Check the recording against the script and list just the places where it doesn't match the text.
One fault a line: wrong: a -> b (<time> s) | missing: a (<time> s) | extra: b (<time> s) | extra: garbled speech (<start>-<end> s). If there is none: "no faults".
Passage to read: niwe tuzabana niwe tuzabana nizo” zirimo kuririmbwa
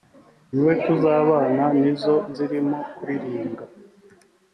missing: niwe tuzabana (1.6 s)